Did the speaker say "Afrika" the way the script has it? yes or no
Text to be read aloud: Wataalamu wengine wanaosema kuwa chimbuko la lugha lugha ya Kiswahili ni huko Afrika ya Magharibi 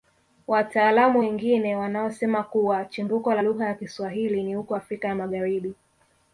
yes